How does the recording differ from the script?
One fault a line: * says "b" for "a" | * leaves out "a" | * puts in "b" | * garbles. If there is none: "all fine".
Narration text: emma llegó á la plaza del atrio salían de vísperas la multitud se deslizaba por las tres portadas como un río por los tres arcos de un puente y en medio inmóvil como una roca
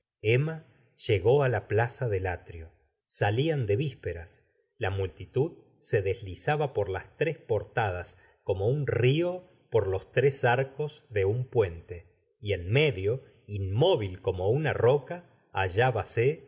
all fine